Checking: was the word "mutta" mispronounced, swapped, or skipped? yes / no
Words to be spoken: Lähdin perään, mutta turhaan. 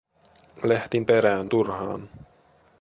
yes